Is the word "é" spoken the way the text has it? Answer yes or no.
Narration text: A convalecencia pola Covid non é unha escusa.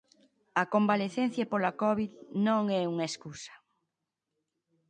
yes